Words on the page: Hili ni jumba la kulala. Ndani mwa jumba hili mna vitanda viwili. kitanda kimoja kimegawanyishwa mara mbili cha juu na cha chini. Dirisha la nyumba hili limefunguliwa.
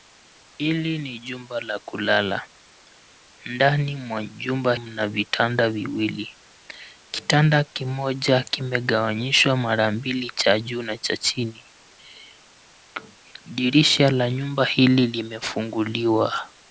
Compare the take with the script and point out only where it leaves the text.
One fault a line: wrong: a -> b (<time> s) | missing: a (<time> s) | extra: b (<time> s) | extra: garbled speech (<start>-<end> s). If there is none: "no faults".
missing: hili (4.8 s)